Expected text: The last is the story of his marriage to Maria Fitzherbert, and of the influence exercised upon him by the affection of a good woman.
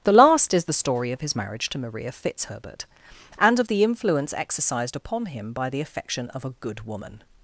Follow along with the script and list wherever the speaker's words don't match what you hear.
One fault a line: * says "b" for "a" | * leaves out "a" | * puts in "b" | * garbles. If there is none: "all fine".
all fine